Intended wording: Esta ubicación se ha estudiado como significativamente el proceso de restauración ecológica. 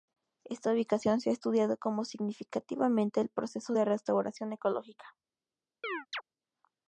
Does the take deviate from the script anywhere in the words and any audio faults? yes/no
yes